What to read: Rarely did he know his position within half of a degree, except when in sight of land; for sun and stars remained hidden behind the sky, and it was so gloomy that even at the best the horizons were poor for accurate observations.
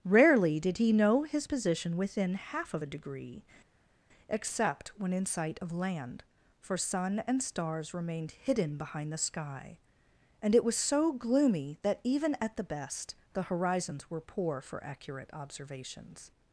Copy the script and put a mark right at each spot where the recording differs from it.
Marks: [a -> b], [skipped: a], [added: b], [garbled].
Rarely did he know his position within half of a degree, except when in sight of land; for sun and stars remained hidden behind the sky, and it was so gloomy that even at the best the horizons were poor for accurate observations.